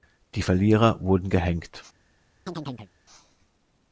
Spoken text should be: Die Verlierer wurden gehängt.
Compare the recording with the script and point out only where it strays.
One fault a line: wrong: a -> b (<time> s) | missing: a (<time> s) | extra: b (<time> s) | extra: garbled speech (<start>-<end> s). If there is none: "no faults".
no faults